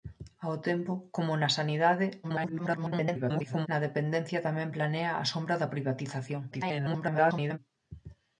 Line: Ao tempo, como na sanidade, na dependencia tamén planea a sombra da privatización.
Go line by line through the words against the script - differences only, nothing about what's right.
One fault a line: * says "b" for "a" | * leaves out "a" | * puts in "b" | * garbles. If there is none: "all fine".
* garbles
* garbles